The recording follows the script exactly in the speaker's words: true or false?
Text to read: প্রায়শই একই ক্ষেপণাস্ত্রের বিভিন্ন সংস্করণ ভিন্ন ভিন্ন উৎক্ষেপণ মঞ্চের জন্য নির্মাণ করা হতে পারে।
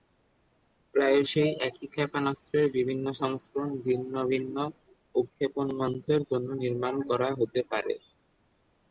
true